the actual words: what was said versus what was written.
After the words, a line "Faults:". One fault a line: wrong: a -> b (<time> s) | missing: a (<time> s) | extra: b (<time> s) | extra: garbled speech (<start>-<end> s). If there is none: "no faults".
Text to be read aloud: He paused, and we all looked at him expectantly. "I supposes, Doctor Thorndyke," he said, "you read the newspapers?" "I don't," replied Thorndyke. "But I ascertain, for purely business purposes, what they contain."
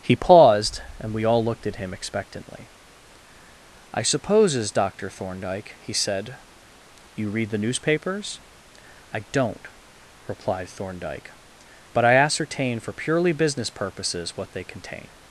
He paused, and we all looked at him expectantly. "I supposes, Doctor Thorndyke," he said, "you read the newspapers?" "I don't," replied Thorndyke. "But I ascertain, for purely business purposes, what they contain."
Faults:
no faults